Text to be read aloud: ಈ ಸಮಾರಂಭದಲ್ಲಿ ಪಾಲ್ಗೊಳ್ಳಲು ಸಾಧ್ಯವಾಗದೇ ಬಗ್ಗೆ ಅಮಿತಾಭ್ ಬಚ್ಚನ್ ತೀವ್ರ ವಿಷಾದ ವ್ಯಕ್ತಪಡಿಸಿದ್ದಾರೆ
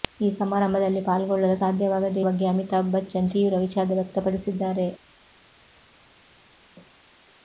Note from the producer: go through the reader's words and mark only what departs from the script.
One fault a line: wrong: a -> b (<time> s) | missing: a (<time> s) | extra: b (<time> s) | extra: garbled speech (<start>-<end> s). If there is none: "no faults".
no faults